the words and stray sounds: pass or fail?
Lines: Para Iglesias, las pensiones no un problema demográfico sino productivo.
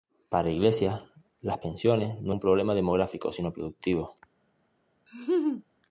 fail